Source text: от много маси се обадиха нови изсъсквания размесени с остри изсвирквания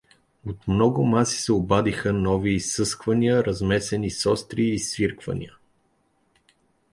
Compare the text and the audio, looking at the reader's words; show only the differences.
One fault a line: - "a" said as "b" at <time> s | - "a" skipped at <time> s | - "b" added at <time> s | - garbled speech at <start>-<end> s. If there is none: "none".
none